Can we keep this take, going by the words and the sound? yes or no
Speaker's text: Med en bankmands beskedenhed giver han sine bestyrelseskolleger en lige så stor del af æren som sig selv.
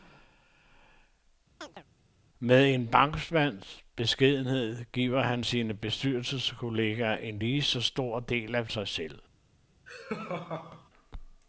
no